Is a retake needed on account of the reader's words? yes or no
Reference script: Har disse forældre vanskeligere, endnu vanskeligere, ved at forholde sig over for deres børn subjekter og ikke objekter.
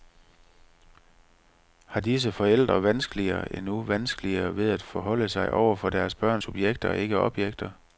no